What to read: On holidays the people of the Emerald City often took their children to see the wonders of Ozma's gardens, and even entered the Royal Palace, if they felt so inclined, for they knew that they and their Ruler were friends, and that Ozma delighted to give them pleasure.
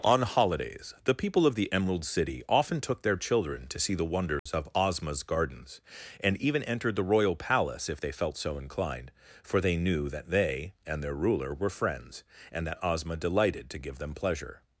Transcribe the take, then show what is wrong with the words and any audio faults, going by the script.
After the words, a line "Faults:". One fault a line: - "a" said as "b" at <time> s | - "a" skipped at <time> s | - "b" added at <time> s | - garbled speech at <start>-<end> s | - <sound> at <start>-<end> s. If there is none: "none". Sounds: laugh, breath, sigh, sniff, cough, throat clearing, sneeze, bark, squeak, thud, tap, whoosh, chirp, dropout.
On holidays the people of the Emerald City often took their children to see the wonders of Ozma's gardens, and even entered the Royal Palace, if they felt so inclined, for they knew that they and their Ruler were friends, and that Ozma delighted to give them pleasure.
Faults:
- dropout at 4.4-4.5 s